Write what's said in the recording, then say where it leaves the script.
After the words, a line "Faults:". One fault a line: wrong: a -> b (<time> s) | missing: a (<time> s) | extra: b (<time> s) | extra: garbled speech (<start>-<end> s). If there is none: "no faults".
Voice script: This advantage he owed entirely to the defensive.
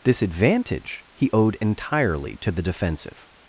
This advantage he owed entirely to the defensive.
Faults:
no faults